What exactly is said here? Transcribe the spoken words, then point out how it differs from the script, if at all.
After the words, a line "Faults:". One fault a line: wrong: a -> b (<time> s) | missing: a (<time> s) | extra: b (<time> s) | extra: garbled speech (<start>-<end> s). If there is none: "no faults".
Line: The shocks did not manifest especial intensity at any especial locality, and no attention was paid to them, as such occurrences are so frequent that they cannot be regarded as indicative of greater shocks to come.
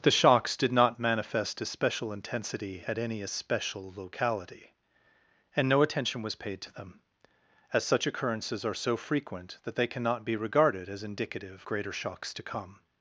The shocks did not manifest especial intensity at any especial locality, and no attention was paid to them, as such occurrences are so frequent that they cannot be regarded as indicative greater shocks to come.
Faults:
missing: of (11.7 s)